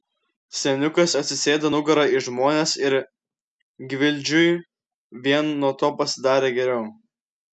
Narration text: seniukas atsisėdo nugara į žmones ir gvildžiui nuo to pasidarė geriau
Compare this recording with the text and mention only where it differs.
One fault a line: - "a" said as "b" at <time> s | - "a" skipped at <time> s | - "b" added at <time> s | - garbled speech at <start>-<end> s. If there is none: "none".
- "vien" added at 5.3 s